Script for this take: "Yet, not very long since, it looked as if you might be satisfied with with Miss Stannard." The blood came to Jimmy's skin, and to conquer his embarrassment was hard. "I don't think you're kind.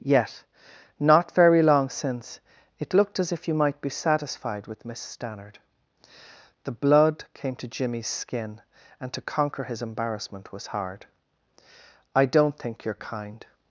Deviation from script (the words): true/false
true